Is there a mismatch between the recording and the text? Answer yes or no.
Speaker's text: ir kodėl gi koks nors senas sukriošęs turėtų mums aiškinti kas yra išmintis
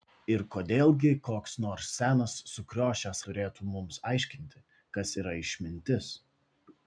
no